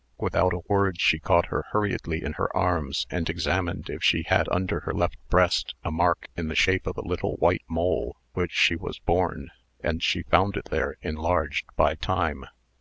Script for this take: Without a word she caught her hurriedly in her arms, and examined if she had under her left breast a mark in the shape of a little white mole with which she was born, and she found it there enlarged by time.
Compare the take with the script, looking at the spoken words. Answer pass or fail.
fail